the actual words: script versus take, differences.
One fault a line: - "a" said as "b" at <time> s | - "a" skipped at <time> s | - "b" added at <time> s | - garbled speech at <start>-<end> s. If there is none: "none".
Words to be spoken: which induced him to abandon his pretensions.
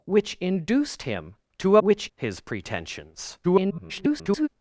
- "abandon" said as "which" at 1.8 s
- garbled speech at 3.4-4.5 s